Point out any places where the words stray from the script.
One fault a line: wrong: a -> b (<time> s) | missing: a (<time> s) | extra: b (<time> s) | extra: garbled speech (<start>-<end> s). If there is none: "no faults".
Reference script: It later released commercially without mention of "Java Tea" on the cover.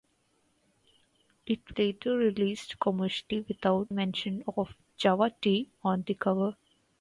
no faults